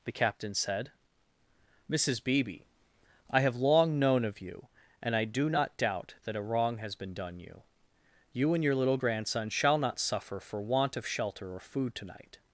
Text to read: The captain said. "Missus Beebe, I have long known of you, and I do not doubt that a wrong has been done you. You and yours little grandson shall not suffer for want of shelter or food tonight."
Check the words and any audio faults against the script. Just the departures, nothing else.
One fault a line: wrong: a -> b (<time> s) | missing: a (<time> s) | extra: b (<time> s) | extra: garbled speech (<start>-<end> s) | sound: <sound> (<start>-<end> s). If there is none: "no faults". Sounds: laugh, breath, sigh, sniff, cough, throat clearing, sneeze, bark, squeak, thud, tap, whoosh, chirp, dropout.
wrong: yours -> your (8.6 s)